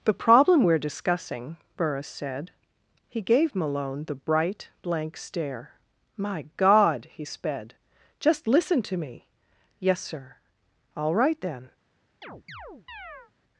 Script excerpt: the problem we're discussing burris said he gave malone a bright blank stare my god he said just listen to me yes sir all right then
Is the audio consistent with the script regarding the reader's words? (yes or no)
no